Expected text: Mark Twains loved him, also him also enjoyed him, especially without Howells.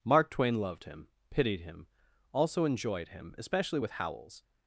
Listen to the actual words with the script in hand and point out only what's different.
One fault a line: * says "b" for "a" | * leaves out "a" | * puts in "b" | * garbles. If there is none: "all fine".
* says "Twain" for "Twains"
* says "pitied" for "also"
* says "with" for "without"